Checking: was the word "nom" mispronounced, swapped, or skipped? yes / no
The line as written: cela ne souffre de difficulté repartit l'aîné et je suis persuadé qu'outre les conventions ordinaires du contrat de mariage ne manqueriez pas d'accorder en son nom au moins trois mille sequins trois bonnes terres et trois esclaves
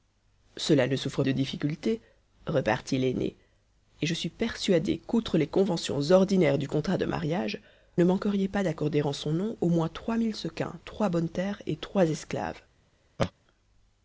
no